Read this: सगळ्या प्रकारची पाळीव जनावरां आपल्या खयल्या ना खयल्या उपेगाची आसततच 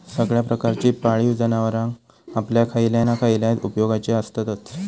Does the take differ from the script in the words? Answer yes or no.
no